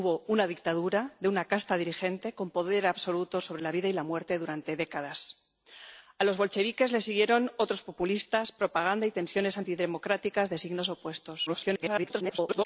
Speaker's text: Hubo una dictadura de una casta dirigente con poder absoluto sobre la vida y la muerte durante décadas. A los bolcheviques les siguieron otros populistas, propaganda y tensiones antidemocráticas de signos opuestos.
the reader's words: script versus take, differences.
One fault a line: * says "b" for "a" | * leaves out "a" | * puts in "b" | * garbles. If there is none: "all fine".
* garbles